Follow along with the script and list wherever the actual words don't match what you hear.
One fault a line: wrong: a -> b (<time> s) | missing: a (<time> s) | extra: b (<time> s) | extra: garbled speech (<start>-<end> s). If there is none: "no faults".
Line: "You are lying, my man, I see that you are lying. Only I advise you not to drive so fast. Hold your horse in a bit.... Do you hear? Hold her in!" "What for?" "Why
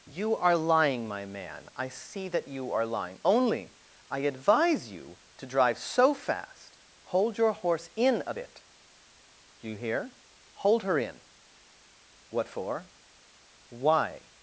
missing: not (5.2 s)